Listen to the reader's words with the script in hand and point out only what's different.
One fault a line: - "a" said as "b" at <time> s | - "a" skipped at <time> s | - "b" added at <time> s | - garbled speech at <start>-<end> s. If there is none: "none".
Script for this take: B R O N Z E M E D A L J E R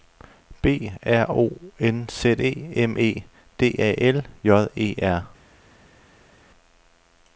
none